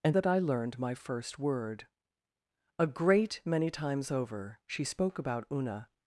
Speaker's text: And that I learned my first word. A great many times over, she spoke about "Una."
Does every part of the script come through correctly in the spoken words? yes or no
yes